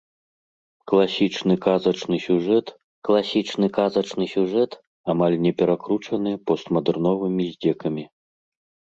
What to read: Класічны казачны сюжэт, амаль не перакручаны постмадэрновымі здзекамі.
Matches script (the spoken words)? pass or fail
fail